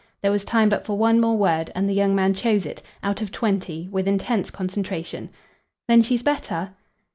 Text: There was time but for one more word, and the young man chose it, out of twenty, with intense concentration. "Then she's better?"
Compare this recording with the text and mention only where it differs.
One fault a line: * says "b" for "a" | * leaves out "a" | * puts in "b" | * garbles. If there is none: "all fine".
all fine